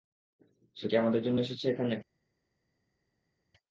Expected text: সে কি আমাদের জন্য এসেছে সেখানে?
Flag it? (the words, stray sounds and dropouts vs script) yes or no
yes